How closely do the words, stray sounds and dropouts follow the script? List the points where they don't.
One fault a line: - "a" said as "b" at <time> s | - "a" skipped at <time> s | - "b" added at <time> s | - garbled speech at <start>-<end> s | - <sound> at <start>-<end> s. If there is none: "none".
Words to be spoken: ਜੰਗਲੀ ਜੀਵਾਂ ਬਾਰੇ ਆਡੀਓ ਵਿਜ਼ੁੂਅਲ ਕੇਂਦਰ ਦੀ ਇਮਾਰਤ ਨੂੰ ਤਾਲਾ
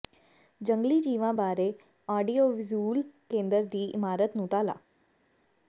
none